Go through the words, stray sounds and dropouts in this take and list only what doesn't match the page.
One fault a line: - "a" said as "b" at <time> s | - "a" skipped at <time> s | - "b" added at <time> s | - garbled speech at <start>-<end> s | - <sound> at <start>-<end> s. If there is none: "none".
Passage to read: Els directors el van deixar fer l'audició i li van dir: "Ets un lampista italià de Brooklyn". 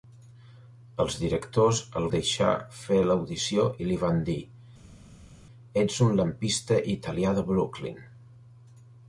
- "van" skipped at 2.1 s